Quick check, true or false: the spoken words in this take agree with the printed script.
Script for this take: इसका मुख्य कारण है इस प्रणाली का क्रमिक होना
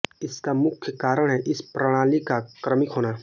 true